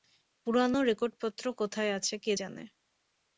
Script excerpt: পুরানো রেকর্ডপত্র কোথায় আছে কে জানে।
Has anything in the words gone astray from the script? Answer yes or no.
no